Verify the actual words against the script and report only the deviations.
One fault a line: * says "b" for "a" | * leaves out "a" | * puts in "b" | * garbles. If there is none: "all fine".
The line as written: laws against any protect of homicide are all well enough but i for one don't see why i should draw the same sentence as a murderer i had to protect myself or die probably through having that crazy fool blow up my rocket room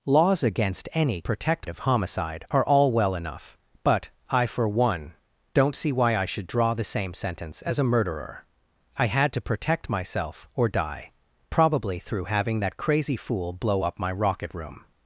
all fine